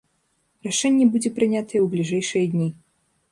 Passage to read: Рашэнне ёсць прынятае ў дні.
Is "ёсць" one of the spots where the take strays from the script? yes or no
yes